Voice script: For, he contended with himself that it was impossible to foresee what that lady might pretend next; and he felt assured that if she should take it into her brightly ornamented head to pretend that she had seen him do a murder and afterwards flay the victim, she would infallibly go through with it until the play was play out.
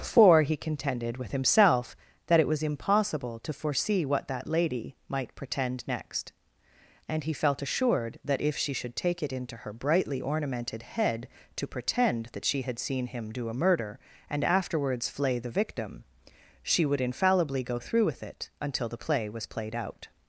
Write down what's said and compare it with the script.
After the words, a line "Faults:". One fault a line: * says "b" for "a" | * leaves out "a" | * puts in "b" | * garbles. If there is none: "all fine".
For, he contended with himself that it was impossible to foresee what that lady might pretend next; and he felt assured that if she should take it into her brightly ornamented head to pretend that she had seen him do a murder and afterwards flay the victim, she would infallibly go through with it until the play was played out.
Faults:
* says "played" for "play"